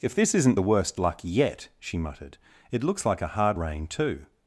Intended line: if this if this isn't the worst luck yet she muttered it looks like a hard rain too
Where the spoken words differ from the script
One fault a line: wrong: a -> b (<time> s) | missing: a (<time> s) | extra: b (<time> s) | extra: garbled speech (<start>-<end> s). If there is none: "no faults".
missing: if this (0.3 s)